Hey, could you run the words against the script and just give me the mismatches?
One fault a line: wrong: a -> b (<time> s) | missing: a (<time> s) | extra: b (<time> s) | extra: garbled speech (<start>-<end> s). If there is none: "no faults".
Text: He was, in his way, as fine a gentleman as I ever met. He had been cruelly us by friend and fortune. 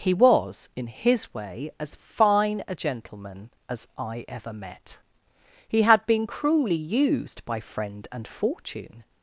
wrong: us -> used (6.8 s)